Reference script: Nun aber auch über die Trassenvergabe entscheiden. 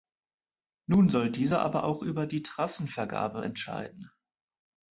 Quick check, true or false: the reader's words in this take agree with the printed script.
false